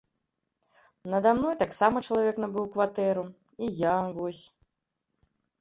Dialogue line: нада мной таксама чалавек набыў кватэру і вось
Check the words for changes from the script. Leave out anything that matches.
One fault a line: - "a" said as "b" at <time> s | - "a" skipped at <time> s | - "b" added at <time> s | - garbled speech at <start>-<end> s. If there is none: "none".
- "я" added at 3.8 s